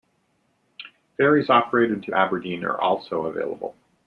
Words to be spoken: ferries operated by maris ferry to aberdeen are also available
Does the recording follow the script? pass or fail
fail